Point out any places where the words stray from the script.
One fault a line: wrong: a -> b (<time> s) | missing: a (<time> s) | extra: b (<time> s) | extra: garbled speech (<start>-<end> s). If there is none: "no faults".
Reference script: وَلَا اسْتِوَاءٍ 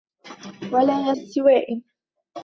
no faults